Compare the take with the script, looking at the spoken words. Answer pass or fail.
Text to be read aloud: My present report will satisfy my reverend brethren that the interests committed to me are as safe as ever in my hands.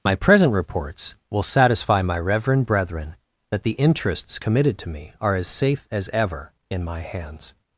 fail